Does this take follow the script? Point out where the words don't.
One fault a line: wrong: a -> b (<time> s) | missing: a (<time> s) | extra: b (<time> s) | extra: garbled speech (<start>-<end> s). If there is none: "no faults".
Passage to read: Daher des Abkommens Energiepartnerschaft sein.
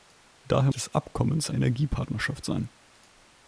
no faults